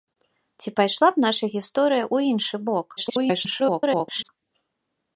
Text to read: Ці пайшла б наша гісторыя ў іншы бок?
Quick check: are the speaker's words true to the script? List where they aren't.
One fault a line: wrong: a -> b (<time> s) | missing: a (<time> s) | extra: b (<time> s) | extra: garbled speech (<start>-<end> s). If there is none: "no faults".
extra: garbled speech (3.0-4.3 s)